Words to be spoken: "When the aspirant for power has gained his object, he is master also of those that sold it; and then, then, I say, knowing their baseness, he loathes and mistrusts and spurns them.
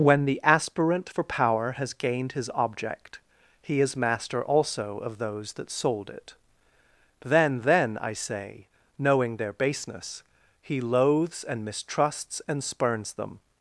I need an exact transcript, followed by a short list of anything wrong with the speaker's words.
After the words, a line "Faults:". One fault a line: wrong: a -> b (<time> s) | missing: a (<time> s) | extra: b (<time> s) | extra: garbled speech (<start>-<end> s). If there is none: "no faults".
"When the aspirant for power has gained his object, he is master also of those that sold it; then, then, I say, knowing their baseness, he loathes and mistrusts and spurns them.
Faults:
missing: and (6.3 s)